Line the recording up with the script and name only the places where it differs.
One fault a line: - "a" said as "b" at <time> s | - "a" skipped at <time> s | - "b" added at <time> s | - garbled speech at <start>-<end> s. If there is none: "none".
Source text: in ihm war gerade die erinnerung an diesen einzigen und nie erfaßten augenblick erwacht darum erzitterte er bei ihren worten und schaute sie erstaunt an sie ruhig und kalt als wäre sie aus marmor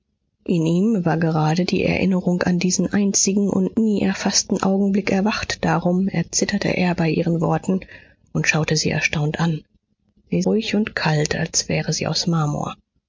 none